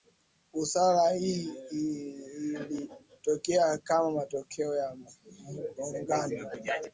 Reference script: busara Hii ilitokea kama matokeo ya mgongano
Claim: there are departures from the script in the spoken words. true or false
false